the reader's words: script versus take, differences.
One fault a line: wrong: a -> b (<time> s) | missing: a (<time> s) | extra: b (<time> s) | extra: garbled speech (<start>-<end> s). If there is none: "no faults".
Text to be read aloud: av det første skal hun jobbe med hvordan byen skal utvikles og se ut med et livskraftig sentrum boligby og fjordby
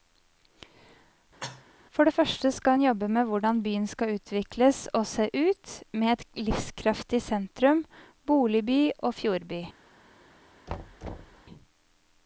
wrong: av -> for (2.0 s)